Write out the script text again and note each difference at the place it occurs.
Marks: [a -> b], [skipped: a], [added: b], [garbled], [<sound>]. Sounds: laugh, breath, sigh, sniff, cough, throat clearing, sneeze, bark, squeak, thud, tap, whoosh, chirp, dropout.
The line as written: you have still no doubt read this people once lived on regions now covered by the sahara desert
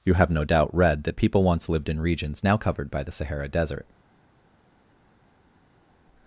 you have [skipped: still] no doubt read [this -> that] people once lived [on -> in] regions now covered by the sahara desert